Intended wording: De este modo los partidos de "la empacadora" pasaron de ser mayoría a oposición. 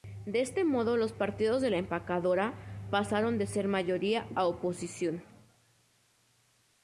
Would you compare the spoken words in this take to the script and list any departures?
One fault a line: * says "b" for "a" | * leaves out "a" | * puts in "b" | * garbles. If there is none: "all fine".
all fine